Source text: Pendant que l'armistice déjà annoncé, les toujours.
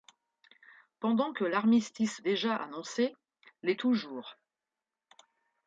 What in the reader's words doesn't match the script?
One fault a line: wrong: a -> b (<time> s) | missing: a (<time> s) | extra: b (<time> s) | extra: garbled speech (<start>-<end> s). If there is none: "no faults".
no faults